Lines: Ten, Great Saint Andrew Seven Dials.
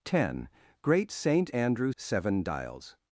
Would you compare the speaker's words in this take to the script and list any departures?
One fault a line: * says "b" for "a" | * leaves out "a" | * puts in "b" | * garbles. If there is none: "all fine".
all fine